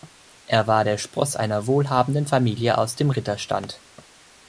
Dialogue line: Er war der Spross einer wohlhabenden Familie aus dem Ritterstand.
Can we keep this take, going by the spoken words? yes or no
yes